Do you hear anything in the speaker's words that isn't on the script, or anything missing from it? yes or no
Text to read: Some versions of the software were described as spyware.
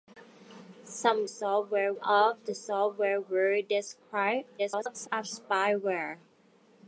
yes